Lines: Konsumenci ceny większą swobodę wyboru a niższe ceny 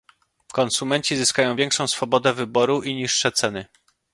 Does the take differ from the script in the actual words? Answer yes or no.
yes